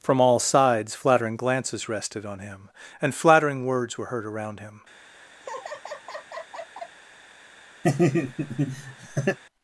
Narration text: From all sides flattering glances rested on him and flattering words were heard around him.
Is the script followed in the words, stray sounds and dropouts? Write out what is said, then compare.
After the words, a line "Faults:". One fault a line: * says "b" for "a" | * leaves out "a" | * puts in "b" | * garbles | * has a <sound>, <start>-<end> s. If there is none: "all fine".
From all sides flattering glances rested on him and flattering words were heard around him.
Faults:
* has a laugh, 5.4-7.0 s
* has a laugh, 7.8-9.4 s